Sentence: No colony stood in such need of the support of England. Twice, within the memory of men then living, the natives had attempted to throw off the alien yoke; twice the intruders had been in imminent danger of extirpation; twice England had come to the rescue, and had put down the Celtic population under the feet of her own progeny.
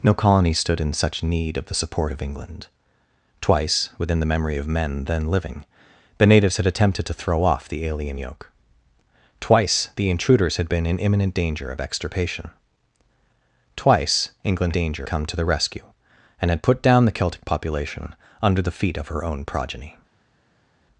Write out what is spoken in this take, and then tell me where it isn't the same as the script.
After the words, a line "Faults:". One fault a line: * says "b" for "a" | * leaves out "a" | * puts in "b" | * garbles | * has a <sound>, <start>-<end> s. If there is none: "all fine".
No colony stood in such need of the support of England. Twice, within the memory of men then living, the natives had attempted to throw off the alien yoke; twice the intruders had been in imminent danger of extirpation; twice England danger come to the rescue, and had put down the Celtic population under the feet of her own progeny.
Faults:
* says "danger" for "had"